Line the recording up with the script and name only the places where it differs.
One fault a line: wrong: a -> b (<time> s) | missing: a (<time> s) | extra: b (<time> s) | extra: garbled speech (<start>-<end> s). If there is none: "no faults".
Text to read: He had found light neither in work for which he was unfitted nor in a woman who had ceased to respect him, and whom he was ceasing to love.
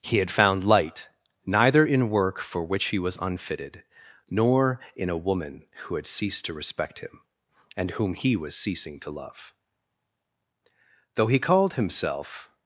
extra: Though he called himself (11.2 s)